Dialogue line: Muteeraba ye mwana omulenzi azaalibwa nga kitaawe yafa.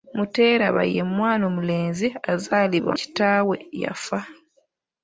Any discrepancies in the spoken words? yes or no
yes